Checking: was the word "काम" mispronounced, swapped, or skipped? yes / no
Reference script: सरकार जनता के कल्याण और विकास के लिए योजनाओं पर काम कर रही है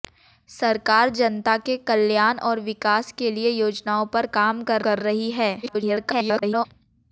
no